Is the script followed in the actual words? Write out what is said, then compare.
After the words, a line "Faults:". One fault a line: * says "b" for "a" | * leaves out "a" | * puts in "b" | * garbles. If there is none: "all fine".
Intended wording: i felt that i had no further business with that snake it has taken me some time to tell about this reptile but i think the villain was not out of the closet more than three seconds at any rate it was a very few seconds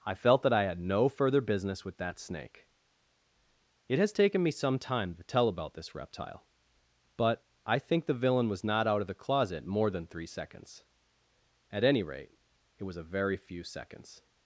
i felt that i had no further business with that snake it has taken me some time to tell about this reptile but i think the villain was not out of the closet more than three seconds at any rate it was a very few seconds
Faults:
all fine